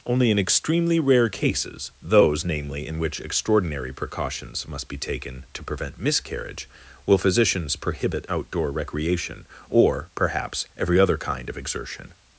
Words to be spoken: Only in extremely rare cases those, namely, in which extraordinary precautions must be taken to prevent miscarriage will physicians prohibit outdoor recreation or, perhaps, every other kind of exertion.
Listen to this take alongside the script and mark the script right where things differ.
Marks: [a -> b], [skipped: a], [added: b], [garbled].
Only in extremely rare cases those, namely, in which extraordinary precautions must be taken to prevent miscarriage will physicians prohibit outdoor recreation or, perhaps, every other kind of exertion.